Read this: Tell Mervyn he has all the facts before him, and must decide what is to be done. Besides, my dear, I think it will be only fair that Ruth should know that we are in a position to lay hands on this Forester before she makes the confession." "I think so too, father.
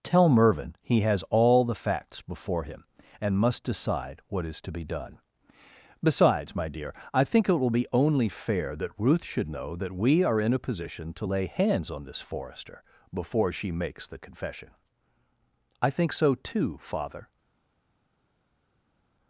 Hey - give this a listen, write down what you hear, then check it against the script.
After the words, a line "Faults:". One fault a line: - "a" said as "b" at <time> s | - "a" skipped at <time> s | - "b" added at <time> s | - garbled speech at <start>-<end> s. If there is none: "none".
Tell Mervyn he has all the facts before him, and must decide what is to be done. Besides, my dear, I think it will be only fair that Ruth should know that we are in a position to lay hands on this Forester before she makes the confession." "I think so too, father.
Faults:
none